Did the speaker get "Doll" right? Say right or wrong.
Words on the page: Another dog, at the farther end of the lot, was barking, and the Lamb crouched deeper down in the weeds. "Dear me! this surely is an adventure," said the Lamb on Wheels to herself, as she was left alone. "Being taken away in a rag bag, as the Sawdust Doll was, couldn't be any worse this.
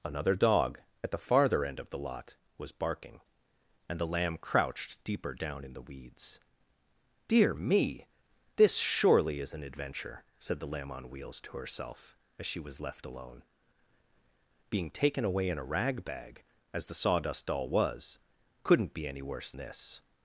right